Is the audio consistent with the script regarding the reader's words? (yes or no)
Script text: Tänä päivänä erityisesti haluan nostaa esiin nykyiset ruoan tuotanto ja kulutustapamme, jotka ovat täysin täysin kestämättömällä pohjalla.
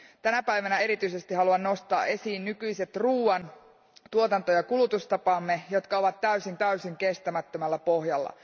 yes